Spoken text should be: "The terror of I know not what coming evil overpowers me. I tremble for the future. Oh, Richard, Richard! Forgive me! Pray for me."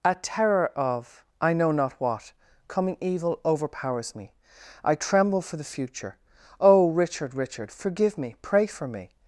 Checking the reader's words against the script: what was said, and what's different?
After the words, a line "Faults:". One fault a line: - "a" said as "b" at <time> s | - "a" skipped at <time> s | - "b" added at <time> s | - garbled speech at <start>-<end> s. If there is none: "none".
"A terror of I know not what coming evil overpowers me. I tremble for the future. Oh, Richard, Richard! Forgive me! Pray for me."
Faults:
- "The" said as "A" at 0.0 s